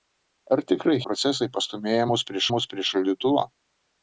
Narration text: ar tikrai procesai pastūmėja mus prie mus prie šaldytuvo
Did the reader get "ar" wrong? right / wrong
right